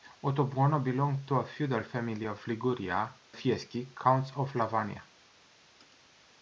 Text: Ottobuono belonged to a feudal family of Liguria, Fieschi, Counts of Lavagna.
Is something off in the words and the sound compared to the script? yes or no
no